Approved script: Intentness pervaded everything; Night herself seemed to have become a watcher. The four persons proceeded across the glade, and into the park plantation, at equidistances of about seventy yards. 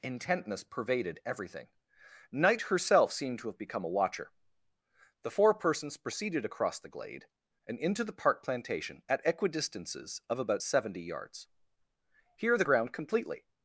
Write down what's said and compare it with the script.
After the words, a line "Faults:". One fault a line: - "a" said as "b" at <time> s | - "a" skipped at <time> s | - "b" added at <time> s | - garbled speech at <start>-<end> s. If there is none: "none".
Intentness pervaded everything; Night herself seemed to have become a watcher. The four persons proceeded across the glade, and into the park plantation, at equidistances of about seventy yards. Here the ground, completely
Faults:
- "Here the ground completely" added at 12.4 s